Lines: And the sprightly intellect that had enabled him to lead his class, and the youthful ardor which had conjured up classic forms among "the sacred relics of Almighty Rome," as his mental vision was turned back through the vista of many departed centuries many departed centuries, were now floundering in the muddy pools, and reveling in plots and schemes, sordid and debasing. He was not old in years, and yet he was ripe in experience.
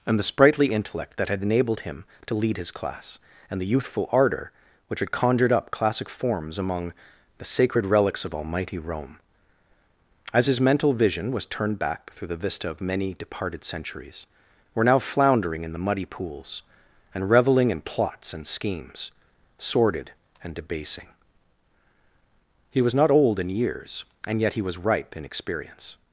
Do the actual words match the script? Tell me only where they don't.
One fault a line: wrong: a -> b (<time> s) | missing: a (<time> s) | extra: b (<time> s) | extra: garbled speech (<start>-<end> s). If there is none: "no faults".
missing: many departed centuries (14.2 s)